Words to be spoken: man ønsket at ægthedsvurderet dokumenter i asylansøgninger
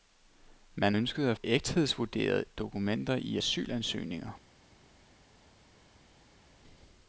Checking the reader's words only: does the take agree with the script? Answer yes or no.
yes